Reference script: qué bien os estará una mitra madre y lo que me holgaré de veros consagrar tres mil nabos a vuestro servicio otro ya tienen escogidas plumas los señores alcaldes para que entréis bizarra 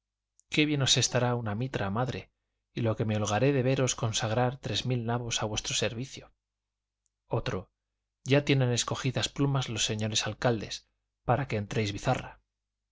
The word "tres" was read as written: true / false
true